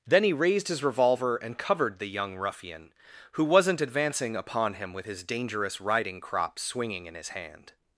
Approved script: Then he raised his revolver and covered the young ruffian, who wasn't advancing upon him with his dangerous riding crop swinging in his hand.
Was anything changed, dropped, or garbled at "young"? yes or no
no